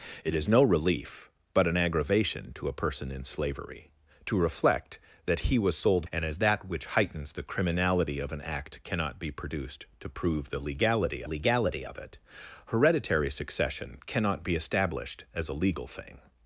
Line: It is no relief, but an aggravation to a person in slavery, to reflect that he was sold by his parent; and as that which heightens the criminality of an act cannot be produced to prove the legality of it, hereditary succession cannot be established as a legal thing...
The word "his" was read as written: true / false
false